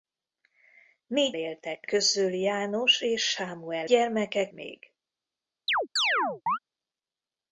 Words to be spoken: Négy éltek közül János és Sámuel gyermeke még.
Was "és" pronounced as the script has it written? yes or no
yes